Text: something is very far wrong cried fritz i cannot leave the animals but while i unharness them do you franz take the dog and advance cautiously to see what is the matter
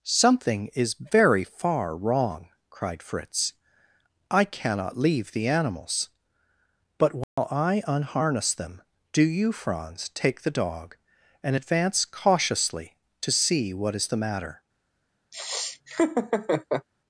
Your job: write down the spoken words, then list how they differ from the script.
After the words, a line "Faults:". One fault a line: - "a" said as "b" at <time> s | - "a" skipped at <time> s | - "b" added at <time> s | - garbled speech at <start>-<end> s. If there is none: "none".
something is very far wrong cried fritz i cannot leave the animals but while i unharness them do you franz take the dog and advance cautiously to see what is the matter
Faults:
none